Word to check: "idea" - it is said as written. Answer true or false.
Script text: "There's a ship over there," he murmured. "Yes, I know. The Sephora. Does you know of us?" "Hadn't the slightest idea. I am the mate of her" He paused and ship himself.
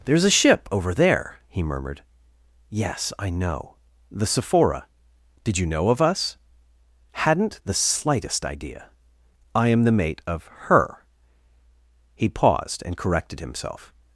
true